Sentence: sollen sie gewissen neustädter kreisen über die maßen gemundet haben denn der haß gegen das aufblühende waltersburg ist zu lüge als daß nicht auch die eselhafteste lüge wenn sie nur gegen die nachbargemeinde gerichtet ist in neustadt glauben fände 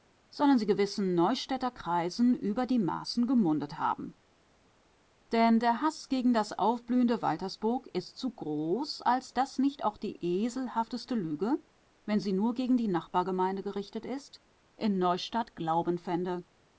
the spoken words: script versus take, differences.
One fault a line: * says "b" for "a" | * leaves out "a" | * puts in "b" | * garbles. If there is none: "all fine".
* says "groß" for "lüge"